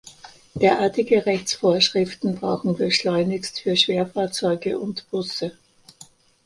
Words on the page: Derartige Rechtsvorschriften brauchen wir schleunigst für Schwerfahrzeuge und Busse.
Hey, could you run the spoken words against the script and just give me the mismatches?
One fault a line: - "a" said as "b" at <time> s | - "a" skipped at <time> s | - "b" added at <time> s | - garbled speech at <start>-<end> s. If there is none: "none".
none